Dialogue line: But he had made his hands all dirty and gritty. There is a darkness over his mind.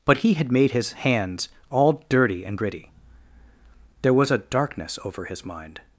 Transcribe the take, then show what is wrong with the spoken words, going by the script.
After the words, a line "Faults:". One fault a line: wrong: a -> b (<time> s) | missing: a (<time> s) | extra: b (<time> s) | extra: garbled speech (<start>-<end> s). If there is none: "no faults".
But he had made his hands all dirty and gritty. There was a darkness over his mind.
Faults:
wrong: is -> was (4.1 s)